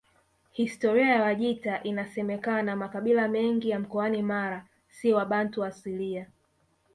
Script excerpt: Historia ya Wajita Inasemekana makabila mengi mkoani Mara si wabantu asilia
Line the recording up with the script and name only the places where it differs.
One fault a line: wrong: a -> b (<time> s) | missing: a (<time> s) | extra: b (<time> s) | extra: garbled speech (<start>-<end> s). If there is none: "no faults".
extra: ya (3.7 s)